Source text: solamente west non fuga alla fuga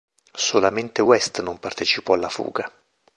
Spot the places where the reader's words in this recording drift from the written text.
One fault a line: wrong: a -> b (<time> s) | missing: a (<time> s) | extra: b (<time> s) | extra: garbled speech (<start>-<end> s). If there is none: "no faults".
wrong: fuga -> partecipò (1.6 s)